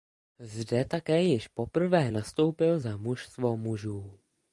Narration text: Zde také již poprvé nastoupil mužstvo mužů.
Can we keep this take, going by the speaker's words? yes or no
no